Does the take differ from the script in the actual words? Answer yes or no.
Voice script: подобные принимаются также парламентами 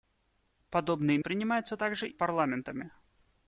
no